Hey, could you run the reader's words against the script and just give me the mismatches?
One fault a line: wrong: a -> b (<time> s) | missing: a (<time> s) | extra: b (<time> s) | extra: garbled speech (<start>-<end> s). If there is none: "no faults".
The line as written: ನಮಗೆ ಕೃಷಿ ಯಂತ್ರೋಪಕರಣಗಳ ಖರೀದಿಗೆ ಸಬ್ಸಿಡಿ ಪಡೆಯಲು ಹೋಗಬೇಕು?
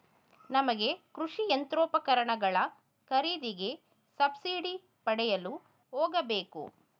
no faults